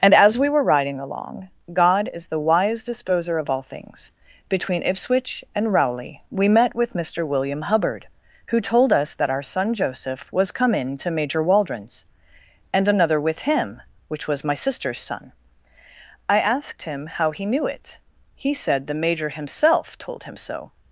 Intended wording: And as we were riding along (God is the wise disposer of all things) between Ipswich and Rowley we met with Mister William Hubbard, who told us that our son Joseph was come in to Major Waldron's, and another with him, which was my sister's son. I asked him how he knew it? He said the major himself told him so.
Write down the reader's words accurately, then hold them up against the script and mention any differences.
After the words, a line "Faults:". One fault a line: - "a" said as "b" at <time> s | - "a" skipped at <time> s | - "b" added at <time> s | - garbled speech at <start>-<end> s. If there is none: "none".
And as we were riding along (God is the wise disposer of all things) between Ipswich and Rowley we met with Mister William Hubbard, who told us that our son Joseph was come in to Major Waldron's, and another with him, which was my sister's son. I asked him how he knew it? He said the major himself told him so.
Faults:
none